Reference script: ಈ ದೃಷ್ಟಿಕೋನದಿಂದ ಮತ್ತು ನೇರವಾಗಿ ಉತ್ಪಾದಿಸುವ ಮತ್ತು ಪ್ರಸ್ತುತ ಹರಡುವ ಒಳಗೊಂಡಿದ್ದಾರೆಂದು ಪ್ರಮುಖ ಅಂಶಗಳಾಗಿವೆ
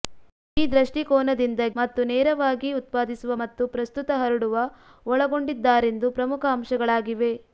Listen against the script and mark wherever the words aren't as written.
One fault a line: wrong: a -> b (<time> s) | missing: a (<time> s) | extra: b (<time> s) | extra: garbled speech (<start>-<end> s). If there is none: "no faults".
no faults